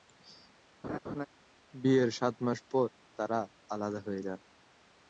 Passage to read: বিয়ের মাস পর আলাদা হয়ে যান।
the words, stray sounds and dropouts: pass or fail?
fail